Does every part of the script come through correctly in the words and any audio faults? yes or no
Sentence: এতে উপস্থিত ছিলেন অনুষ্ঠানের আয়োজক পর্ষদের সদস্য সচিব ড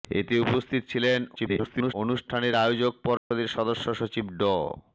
no